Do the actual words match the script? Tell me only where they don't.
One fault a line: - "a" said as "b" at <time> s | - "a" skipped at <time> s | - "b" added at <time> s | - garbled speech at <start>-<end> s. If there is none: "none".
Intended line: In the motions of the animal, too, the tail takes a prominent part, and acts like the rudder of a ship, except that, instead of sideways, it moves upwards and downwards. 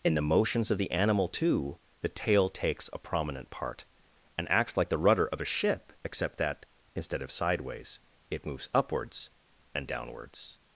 none